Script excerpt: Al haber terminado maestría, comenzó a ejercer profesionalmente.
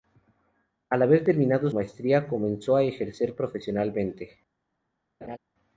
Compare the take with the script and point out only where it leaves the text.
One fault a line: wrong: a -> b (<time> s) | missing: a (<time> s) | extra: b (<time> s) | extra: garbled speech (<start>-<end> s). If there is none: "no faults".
no faults